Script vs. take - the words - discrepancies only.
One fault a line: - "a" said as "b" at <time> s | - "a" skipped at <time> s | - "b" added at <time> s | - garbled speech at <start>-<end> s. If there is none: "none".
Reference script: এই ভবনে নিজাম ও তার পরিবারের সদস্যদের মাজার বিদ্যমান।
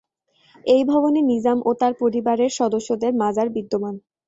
none